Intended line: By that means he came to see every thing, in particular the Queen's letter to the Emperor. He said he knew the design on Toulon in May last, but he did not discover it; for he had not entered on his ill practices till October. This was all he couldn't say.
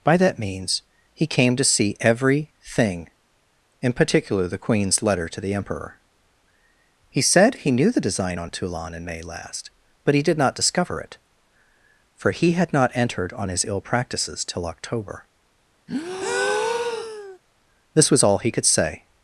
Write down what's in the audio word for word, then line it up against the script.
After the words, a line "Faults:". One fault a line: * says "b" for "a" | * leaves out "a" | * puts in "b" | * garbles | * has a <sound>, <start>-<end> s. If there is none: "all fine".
By that means he came to see every thing, in particular the Queen's letter to the Emperor. He said he knew the design on Toulon in May last, but he did not discover it; for he had not entered on his ill practices till October. This was all he could say.
Faults:
* has a breath, 15.9-17.4 s
* says "could" for "couldn't"